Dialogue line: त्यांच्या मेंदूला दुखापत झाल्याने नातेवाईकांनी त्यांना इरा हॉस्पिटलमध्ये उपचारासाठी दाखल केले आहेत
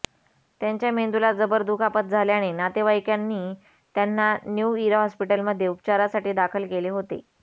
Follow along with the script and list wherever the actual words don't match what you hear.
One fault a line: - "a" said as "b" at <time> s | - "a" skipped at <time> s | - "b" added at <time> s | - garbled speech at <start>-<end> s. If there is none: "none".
- "जबर" added at 1.3 s
- "न्यू" added at 4.5 s
- "आहेत" said as "होते" at 6.9 s